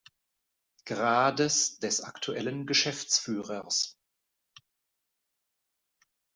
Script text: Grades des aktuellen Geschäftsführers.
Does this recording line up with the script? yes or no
yes